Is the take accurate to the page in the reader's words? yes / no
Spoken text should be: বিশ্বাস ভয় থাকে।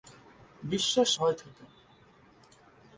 yes